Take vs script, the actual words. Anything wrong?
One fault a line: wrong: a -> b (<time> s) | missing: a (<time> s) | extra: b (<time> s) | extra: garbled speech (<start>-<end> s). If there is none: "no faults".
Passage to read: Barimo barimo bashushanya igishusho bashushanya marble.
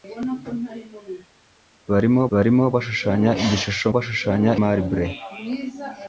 no faults